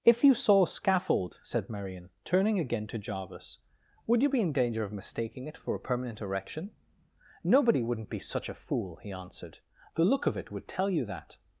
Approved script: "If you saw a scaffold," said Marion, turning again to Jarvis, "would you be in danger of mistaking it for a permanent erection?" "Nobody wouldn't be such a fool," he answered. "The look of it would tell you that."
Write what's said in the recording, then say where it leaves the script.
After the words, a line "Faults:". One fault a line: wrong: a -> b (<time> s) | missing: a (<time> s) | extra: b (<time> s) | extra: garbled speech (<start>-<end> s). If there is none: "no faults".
"If you saw a scaffold," said Marion, turning again to Jarvis, "would you be in danger of mistaking it for a permanent erection?" "Nobody wouldn't be such a fool," he answered. "The look of it would tell you that."
Faults:
no faults